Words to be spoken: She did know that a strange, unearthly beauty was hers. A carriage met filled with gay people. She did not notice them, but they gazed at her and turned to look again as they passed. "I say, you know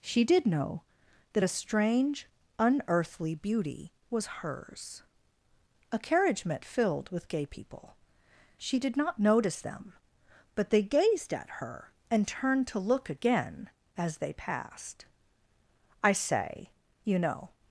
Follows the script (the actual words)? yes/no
yes